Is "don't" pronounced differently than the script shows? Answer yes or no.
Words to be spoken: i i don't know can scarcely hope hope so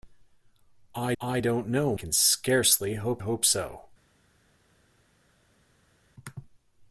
no